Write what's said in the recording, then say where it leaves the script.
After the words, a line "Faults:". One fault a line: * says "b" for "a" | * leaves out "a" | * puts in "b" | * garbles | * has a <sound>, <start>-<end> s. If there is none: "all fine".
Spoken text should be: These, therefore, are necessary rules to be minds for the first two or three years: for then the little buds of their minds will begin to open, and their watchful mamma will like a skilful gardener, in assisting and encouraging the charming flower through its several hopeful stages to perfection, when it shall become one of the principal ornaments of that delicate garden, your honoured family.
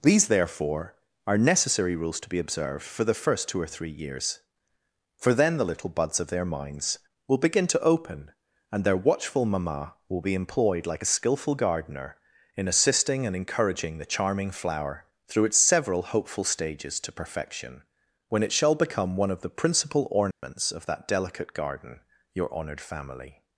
These, therefore, are necessary rules to be observed for the first two or three years: for then the little buds of their minds will begin to open, and their watchful mamma will be employed like a skilful gardener, in assisting and encouraging the charming flower through its several hopeful stages to perfection, when it shall become one of the principal ornaments of that delicate garden, your honoured family.
Faults:
* says "observed" for "minds"
* puts in "be employed"
* has a dropout, 20.3-20.4 s